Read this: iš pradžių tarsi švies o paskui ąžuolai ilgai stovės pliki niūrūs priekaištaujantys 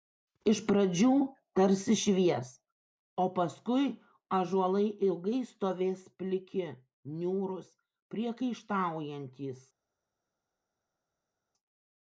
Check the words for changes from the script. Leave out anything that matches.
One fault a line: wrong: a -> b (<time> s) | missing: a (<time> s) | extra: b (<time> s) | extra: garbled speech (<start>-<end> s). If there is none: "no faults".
no faults